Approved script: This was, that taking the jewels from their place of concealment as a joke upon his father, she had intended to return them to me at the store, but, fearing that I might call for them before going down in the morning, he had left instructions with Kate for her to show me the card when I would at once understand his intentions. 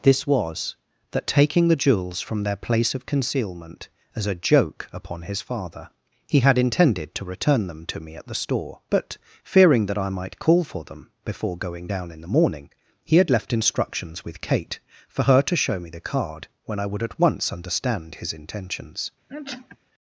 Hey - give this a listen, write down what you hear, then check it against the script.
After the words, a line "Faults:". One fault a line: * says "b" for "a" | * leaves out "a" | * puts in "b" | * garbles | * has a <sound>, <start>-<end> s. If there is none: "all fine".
This was, that taking the jewels from their place of concealment as a joke upon his father, he had intended to return them to me at the store, but, fearing that I might call for them before going down in the morning, he had left instructions with Kate for her to show me the card when I would at once understand his intentions.
Faults:
* says "he" for "she"
* has a sneeze, 19.3-19.8 s